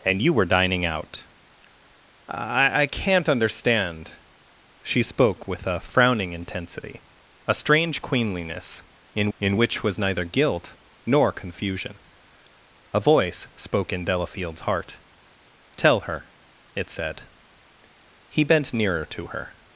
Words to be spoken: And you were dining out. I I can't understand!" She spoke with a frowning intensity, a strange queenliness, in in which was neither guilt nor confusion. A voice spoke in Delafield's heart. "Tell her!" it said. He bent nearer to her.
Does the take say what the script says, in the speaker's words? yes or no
yes